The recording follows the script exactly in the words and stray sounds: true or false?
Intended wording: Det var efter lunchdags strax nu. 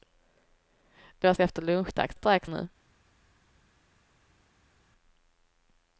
true